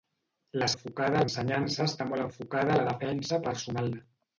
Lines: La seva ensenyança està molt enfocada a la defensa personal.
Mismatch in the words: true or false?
true